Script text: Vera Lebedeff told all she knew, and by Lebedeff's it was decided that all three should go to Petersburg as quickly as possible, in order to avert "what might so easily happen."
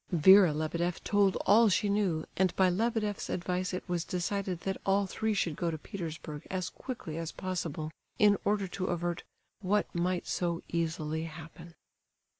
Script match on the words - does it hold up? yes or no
no